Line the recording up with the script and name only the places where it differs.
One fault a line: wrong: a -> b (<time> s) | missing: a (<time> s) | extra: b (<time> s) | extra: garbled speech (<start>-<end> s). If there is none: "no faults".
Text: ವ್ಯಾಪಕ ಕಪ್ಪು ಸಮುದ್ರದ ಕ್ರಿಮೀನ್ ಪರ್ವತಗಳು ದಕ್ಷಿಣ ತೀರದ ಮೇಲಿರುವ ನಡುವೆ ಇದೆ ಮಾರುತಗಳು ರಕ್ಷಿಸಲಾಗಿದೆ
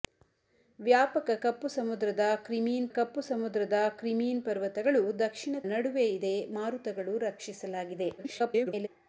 extra: ಕಪ್ಪು ಸಮುದ್ರದ ಕ್ರಿಮೀನ್ (2.9 s)
missing: ತೀರದ ಮೇಲಿರುವ (5.6 s)
extra: garbled speech (8.2-8.9 s)